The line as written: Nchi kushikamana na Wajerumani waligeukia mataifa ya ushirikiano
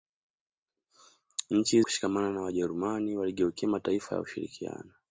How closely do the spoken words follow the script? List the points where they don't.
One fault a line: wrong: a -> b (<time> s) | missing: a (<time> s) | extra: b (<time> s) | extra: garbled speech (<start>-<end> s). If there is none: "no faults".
no faults